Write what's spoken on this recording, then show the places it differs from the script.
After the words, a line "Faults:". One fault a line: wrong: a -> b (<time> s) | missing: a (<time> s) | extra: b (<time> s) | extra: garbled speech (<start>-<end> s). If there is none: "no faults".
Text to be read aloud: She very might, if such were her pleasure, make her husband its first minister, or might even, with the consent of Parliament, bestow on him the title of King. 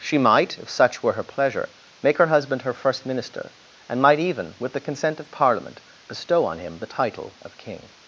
She might, if such were her pleasure, make her husband her first minister, and might even, with the consent of Parliament, bestow on him the title of King.
Faults:
missing: very (0.2 s)
wrong: its -> her (2.6 s)
wrong: or -> and (3.9 s)